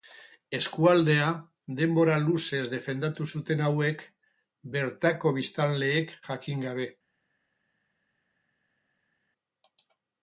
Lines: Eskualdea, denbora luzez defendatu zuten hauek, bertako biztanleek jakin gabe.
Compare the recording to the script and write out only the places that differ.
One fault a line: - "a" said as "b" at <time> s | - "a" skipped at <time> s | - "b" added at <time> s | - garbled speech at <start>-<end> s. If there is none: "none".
none